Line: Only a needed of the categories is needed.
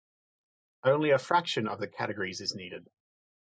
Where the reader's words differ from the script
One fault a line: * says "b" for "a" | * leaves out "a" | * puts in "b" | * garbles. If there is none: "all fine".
* says "fraction" for "needed"